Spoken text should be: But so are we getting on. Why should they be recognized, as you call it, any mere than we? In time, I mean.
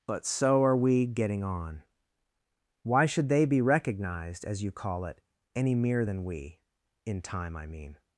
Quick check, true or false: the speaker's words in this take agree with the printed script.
true